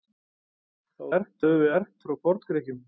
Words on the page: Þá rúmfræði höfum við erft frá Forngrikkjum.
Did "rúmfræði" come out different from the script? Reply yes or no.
yes